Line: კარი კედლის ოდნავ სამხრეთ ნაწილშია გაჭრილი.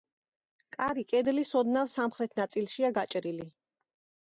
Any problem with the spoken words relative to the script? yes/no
no